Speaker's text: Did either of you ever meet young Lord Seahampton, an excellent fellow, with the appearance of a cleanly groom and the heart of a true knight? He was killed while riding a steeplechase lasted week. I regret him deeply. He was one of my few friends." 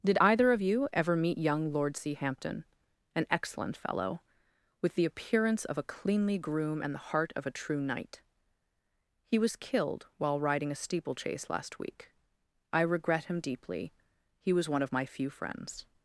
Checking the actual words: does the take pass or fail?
fail